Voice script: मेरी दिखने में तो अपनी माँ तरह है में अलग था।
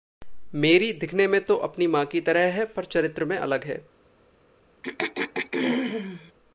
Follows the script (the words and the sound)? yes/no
no